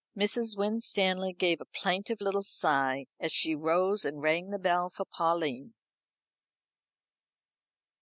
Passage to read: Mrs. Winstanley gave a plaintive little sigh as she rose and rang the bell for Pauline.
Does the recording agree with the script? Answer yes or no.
yes